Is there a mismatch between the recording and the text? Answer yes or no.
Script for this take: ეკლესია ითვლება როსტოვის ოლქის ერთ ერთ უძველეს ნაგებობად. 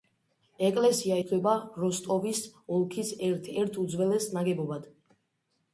no